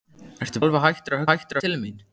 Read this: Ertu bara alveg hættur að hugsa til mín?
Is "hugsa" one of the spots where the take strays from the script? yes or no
yes